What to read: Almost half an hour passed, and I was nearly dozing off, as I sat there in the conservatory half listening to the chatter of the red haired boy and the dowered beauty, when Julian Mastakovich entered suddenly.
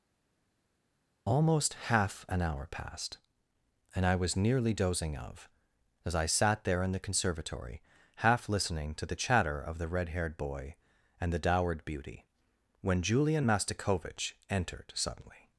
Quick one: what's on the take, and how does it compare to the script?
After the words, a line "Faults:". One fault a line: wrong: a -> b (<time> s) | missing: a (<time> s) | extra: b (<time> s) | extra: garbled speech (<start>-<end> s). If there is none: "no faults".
Almost half an hour passed, and I was nearly dozing of, as I sat there in the conservatory half listening to the chatter of the red haired boy and the dowered beauty, when Julian Mastakovich entered suddenly.
Faults:
wrong: off -> of (5.2 s)